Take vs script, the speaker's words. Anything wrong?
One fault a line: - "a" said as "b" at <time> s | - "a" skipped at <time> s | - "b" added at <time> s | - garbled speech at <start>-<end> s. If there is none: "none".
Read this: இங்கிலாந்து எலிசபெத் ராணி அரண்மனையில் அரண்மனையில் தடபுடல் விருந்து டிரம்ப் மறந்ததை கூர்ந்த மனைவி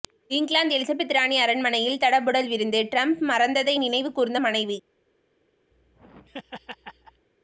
- "அரண்மனையில்" skipped at 2.0 s
- "நினைவு" added at 3.8 s